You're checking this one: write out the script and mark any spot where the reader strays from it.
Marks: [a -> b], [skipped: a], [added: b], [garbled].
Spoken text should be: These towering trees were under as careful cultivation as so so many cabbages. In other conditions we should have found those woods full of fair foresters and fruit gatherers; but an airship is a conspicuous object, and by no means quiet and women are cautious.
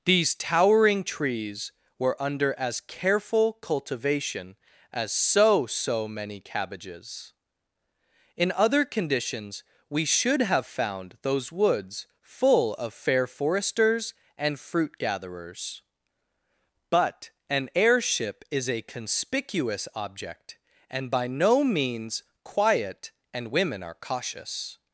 These towering trees were under as careful cultivation as so so many cabbages. In other conditions we should have found those woods full of fair foresters and fruit gatherers; but an airship is a conspicuous object, and by no means quiet and women are cautious.